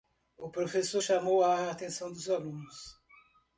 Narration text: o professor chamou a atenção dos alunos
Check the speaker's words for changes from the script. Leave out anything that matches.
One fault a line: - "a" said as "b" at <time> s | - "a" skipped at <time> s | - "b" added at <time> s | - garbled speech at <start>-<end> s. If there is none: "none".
none